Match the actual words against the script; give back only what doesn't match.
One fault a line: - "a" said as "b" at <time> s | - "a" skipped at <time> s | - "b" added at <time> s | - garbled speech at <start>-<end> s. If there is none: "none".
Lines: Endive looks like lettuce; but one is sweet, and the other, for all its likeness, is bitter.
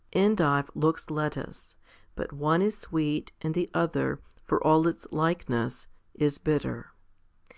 - "like" skipped at 1.1 s